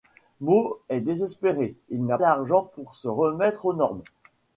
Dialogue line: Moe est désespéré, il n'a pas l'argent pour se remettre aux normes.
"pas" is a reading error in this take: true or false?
true